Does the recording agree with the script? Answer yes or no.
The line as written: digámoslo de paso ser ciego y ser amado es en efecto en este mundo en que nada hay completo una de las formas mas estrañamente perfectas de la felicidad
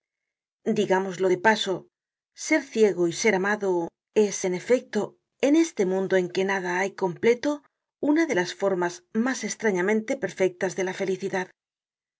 yes